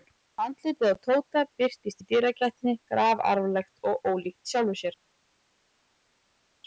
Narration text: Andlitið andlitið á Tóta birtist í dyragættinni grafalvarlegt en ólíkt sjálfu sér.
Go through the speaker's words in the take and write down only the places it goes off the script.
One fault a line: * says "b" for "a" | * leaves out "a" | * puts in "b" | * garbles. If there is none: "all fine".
* leaves out "andlitið"
* says "og" for "en"